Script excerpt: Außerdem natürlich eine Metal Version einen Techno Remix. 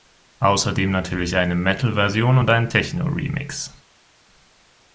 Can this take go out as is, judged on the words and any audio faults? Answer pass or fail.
fail